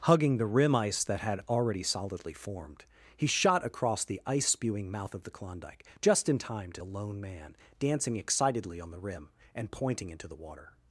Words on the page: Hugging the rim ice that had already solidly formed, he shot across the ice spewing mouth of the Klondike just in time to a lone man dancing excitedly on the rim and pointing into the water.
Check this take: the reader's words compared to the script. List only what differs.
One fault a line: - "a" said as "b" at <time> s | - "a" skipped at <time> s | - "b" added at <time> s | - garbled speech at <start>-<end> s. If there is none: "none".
none